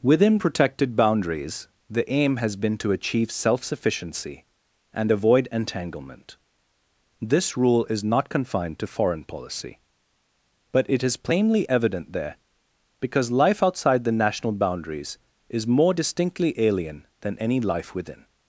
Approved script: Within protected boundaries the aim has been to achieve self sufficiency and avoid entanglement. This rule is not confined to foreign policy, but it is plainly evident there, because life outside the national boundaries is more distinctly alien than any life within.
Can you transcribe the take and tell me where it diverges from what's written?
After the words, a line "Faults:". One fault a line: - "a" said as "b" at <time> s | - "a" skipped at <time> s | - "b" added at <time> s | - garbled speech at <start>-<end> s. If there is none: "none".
Within protected boundaries the aim has been to achieve self sufficiency and avoid entanglement. This rule is not confined to foreign policy, but it is plainly evident there, because life outside the national boundaries is more distinctly alien than any life within.
Faults:
none